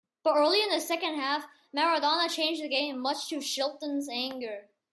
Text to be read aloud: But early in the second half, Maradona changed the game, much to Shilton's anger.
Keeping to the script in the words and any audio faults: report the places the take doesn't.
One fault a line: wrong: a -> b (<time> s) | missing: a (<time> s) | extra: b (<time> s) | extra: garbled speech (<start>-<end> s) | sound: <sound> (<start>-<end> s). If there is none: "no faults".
no faults